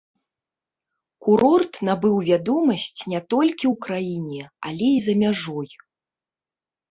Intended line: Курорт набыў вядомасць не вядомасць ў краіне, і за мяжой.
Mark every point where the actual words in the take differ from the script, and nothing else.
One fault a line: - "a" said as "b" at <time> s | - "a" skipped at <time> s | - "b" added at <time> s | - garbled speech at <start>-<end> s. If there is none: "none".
- "вядомасць" said as "толькі" at 3.4 s
- "але" added at 4.7 s